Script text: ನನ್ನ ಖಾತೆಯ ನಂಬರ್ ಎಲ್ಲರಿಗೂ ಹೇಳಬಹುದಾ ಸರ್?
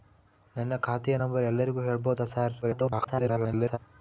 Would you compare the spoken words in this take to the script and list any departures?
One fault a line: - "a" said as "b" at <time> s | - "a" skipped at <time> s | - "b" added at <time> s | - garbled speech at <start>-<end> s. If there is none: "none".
- garbled speech at 2.6-3.8 s